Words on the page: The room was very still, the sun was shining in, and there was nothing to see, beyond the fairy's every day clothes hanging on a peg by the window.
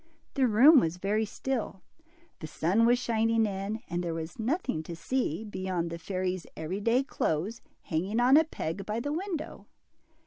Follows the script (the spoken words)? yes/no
yes